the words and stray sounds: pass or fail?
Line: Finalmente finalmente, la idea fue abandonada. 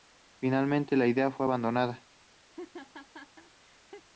fail